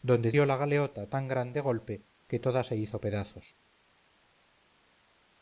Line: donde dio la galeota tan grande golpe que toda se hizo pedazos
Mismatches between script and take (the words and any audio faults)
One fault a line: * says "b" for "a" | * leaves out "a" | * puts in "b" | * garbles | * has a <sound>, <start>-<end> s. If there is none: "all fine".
all fine